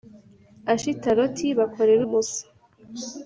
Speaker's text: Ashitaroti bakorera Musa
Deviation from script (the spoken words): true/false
false